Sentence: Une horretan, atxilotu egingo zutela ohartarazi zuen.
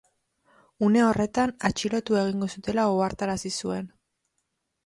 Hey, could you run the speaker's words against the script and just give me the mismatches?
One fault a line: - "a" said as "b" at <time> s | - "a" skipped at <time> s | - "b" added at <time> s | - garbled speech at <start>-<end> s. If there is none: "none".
none